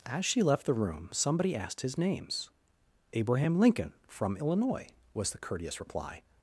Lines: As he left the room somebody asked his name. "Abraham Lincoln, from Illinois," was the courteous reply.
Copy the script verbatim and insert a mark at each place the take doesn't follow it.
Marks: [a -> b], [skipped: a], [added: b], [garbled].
As [he -> she] left the room somebody asked his [name. -> names] "Abraham Lincoln, from Illinois," was the courteous reply.